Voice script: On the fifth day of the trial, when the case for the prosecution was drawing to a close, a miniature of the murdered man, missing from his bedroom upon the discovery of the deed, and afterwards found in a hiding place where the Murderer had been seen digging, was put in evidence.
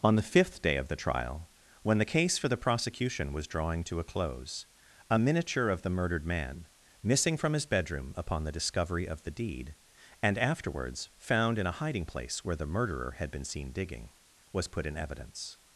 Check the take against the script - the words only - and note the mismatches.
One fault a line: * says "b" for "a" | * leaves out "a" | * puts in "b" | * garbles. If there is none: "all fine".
all fine